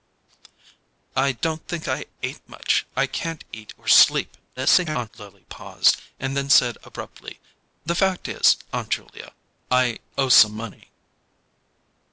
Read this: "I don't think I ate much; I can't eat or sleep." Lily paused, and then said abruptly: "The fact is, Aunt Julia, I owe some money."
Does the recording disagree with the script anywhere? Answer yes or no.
yes